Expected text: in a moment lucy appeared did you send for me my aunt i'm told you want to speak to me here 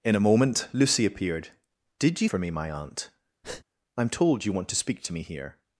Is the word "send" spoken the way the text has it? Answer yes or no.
no